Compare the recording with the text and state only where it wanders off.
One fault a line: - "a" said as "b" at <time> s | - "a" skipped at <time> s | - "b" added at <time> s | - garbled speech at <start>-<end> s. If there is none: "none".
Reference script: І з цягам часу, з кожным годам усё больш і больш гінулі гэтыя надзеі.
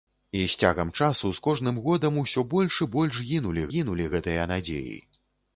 - "гінулі" added at 3.7 s